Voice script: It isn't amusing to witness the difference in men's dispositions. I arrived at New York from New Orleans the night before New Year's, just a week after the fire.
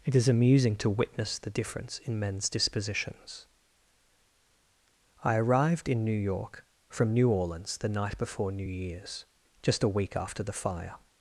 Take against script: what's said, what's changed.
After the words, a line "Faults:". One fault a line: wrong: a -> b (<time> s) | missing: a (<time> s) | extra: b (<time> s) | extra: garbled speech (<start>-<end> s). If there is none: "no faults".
It is amusing to witness the difference in men's dispositions. I arrived in New York from New Orleans the night before New Year's, just a week after the fire.
Faults:
wrong: isn't -> is (0.1 s)
wrong: at -> in (5.9 s)